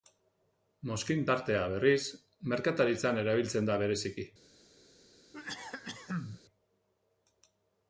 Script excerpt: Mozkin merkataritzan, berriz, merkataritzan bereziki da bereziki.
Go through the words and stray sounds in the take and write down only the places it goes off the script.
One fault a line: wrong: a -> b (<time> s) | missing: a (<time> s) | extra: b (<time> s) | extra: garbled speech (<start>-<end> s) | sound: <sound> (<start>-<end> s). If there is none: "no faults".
wrong: merkataritzan -> tartea (1.3 s)
wrong: bereziki -> erabiltzen (3.2 s)
sound: cough (5.3-6.4 s)